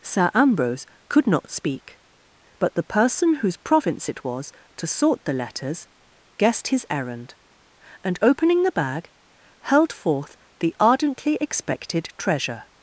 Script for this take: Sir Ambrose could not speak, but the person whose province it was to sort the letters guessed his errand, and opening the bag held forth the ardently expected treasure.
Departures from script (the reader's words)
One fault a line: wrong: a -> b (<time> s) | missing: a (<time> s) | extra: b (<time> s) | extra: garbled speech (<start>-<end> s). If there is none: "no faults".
no faults